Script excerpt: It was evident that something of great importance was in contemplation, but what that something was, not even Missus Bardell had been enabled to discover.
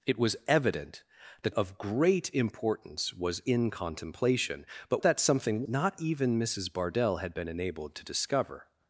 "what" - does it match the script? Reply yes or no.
no